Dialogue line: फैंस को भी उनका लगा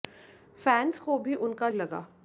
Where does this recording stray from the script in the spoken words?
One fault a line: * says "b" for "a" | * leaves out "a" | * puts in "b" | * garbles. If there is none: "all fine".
all fine